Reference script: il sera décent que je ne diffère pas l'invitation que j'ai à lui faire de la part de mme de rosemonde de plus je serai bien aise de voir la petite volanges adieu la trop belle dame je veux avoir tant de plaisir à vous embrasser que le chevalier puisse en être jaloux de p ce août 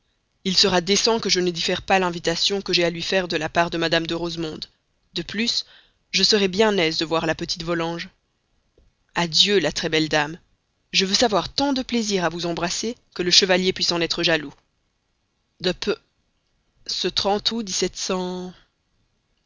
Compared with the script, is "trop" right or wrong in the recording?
wrong